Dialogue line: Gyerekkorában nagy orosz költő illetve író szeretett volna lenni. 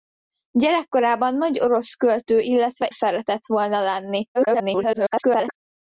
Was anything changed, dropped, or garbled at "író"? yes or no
yes